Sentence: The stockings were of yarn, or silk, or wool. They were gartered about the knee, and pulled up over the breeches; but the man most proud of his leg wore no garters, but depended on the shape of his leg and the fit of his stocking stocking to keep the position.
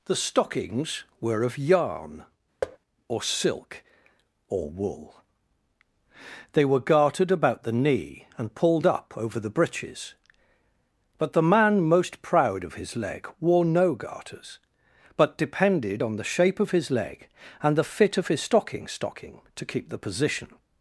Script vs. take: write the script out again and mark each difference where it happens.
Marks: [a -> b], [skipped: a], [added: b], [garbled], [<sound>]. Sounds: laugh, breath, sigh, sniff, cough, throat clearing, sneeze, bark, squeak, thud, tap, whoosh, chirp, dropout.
The stockings were of yarn, [thud] or silk, or wool. They were gartered about the knee, and pulled up over the breeches; but the man most proud of his leg wore no garters, but depended on the shape of his leg and the fit of his stocking stocking to keep the position.